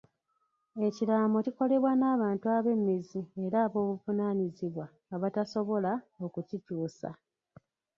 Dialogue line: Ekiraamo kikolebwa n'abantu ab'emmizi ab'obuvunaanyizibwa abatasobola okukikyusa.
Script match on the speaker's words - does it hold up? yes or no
no